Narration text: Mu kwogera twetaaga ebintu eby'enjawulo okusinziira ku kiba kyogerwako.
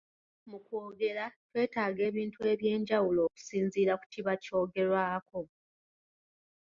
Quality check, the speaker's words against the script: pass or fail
pass